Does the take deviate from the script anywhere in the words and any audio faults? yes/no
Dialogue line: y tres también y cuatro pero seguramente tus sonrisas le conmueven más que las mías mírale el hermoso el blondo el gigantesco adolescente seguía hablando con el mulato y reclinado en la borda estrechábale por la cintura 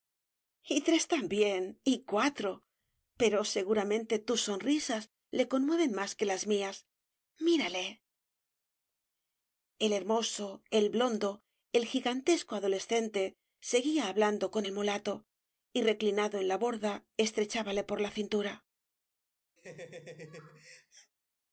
yes